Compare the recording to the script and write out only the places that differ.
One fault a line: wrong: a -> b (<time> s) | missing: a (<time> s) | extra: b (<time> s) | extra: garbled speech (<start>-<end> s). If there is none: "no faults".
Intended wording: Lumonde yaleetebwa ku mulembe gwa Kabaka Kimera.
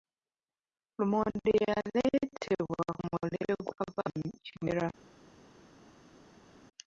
no faults